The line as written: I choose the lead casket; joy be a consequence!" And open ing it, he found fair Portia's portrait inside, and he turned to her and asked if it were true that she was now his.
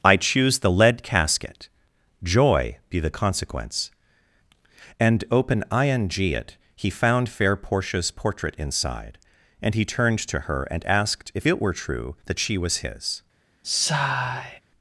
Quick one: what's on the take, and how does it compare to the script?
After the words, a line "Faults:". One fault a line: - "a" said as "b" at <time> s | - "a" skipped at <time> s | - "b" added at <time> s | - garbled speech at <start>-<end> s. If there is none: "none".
I choose the lead casket; joy be the consequence!" And open ing it, he found fair Portia's portrait inside, and he turned to her and asked if it were true that she was his.
Faults:
- "a" said as "the" at 3.0 s
- "now" skipped at 12.8 s